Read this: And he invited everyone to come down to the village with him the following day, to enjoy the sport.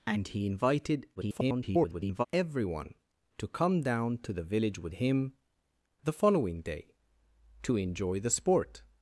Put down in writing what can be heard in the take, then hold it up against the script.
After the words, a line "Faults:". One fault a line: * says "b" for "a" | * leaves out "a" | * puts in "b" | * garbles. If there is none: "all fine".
And he invited [garbled] everyone to come down to the village with him the following day, to enjoy the sport.
Faults:
* garbles